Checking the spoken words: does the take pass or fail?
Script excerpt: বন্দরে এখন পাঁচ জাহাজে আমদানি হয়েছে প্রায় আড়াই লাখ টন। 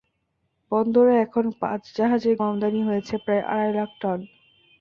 pass